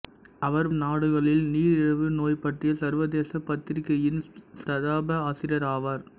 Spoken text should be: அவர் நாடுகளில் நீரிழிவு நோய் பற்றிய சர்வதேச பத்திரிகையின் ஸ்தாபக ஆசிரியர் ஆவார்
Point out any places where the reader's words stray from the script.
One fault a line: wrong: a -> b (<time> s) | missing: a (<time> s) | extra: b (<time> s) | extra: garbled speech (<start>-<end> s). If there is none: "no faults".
no faults